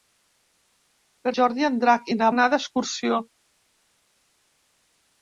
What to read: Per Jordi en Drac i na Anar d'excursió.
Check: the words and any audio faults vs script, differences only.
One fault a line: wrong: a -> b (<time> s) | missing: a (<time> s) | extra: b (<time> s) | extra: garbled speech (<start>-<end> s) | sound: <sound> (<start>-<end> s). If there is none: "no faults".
no faults